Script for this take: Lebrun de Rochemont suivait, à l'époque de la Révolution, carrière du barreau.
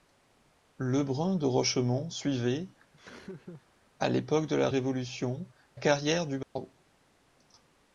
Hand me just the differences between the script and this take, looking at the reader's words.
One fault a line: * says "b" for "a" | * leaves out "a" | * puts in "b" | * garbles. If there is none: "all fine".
all fine